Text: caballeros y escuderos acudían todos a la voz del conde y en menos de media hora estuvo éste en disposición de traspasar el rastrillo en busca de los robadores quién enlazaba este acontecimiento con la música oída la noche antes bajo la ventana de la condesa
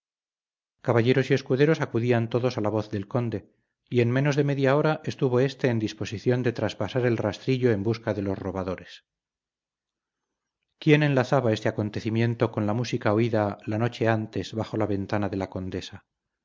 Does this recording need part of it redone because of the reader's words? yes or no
no